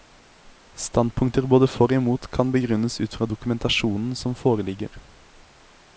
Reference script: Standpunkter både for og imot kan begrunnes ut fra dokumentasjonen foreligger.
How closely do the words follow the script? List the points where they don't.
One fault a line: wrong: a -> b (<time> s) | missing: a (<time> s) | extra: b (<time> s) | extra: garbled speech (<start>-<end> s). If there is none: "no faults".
extra: som (4.2 s)